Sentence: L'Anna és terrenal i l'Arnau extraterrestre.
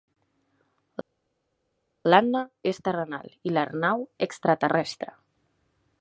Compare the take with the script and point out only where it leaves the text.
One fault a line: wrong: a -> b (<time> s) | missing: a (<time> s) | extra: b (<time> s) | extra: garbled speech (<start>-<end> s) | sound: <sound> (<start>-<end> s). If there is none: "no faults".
no faults